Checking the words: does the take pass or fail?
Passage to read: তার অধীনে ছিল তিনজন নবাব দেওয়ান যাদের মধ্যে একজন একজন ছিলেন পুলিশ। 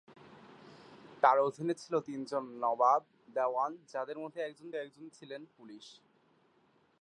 pass